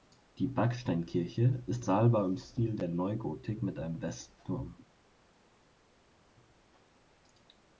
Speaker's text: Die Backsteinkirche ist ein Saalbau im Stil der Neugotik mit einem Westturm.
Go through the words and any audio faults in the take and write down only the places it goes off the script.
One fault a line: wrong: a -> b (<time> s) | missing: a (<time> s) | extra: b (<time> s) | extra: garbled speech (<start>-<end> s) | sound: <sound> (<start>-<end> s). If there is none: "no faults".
missing: ein (1.9 s)